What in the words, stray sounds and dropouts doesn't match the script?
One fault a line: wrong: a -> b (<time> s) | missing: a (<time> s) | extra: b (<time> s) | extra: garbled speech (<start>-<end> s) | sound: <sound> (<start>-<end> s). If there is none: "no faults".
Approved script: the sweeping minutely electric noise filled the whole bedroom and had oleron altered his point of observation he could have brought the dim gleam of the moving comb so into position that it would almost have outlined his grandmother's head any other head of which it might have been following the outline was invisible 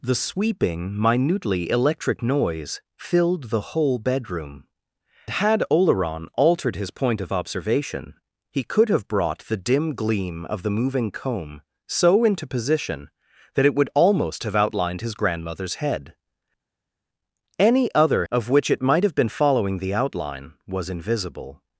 missing: and (4.7 s)
missing: head (18.2 s)